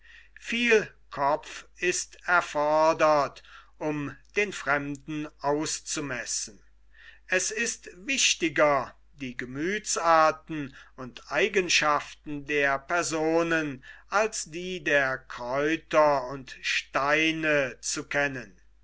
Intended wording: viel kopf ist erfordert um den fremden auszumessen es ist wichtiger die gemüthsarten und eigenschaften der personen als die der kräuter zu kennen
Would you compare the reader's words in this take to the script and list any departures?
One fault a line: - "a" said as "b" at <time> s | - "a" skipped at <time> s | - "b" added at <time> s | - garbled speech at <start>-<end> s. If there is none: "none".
- "und steine" added at 16.3 s